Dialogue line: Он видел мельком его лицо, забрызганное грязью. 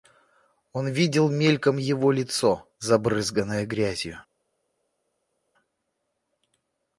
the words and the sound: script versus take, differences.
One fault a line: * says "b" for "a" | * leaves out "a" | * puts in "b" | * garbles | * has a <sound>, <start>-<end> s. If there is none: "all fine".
all fine